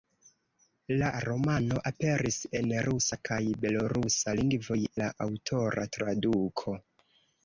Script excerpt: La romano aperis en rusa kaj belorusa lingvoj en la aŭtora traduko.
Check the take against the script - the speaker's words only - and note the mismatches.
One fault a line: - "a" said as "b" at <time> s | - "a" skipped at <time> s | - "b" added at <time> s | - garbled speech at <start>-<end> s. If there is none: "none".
- "en" skipped at 4.8 s